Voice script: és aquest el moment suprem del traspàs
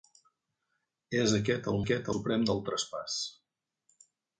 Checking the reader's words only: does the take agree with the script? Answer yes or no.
no